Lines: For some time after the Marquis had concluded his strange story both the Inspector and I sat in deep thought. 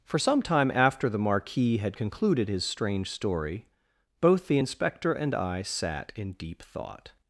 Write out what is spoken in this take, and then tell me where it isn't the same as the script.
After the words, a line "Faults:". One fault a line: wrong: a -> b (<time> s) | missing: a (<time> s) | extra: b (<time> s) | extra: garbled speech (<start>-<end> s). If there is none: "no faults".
For some time after the Marquis had concluded his strange story both the Inspector and I sat in deep thought.
Faults:
no faults